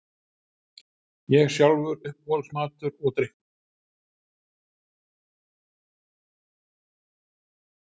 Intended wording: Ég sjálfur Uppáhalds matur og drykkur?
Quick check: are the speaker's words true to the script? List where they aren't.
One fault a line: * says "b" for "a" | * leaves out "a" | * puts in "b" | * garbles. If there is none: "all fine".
all fine